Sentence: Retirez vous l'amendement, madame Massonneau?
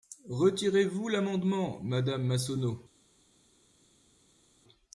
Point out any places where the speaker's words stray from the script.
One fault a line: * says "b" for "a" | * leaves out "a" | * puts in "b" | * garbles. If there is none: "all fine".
all fine